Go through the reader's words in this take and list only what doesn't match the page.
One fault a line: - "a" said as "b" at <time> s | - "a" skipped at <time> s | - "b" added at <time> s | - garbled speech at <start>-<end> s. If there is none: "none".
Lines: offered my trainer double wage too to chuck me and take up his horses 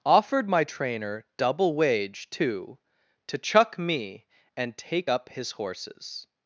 none